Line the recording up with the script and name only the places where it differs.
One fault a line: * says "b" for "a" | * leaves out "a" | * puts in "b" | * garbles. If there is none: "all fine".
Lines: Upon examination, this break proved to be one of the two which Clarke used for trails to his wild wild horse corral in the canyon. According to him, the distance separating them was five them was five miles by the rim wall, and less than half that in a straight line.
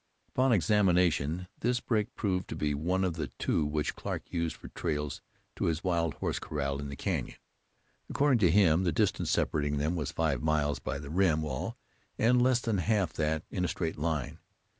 * leaves out "wild"
* leaves out "them was five"